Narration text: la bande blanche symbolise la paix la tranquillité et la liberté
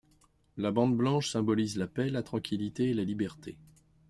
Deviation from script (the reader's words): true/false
false